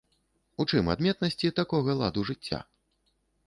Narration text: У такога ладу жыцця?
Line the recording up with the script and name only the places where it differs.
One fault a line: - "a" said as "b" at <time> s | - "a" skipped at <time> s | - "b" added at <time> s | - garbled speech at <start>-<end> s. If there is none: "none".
- "чым адметнасці" added at 0.7 s